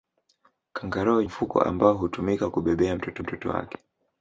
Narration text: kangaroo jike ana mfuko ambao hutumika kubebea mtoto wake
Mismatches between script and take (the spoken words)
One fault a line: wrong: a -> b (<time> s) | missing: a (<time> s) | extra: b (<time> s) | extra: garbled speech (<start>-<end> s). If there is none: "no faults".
missing: jike ana (1.2 s)
extra: mtoto (3.2 s)